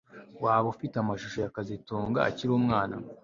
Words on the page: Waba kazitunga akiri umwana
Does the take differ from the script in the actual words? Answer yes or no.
yes